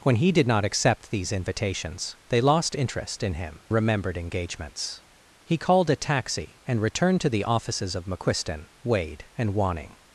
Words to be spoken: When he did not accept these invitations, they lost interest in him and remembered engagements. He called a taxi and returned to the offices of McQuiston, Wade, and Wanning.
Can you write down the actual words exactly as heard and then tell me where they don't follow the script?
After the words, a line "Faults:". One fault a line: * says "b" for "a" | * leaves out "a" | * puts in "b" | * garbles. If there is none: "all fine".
When he did not accept these invitations, they lost interest in him remembered engagements. He called a taxi and returned to the offices of McQuiston, Wade, and Wanning.
Faults:
* leaves out "and"